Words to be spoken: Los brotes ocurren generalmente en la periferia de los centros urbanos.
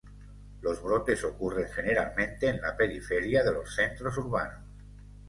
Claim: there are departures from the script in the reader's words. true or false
false